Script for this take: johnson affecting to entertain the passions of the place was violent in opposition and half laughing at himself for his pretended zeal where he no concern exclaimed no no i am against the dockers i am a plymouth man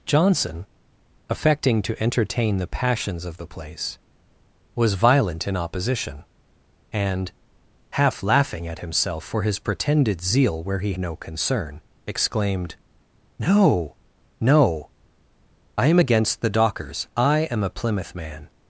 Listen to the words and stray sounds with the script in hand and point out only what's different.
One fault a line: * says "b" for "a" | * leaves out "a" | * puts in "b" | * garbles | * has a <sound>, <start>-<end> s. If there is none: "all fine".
all fine